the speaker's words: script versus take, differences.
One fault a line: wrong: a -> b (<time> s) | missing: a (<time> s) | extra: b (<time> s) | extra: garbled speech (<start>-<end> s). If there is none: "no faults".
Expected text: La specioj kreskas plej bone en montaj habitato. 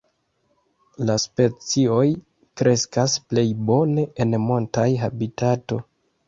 no faults